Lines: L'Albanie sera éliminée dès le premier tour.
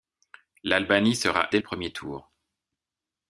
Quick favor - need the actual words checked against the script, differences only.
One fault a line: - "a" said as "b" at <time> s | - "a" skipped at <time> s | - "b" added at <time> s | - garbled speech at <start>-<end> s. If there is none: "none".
- "éliminée" skipped at 1.5 s